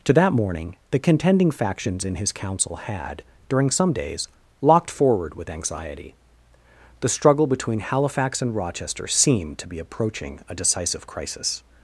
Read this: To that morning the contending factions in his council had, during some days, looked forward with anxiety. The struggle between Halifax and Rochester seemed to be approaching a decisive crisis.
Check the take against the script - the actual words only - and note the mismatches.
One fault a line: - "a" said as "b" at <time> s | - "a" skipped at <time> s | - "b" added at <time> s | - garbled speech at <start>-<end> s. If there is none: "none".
- "looked" said as "locked" at 4.6 s